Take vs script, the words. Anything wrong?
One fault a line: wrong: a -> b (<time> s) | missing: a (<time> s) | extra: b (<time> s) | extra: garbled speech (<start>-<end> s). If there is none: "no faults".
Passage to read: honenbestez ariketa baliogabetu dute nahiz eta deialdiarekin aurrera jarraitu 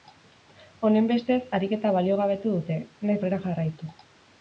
missing: eta deialdiarekin (3.2 s)